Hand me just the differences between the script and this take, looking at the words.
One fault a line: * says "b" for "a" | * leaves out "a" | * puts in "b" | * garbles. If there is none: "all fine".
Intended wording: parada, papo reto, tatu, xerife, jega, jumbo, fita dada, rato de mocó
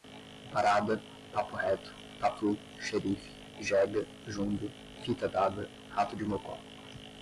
all fine